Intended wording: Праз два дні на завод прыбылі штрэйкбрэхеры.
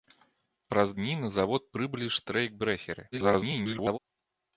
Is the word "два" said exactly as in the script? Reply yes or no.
no